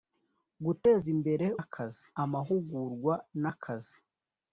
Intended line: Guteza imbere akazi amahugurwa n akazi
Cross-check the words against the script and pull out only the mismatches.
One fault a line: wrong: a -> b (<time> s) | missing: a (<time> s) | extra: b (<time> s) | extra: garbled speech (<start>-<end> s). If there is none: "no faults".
no faults